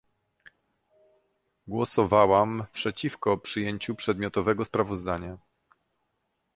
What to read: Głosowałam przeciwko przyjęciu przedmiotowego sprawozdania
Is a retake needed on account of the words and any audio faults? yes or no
no